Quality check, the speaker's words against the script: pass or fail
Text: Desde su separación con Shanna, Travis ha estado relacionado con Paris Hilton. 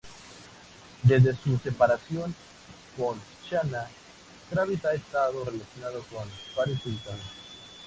pass